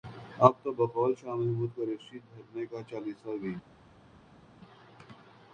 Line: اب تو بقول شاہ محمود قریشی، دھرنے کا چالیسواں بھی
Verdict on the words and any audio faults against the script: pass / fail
pass